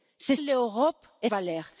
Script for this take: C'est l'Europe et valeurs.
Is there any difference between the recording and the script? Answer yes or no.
no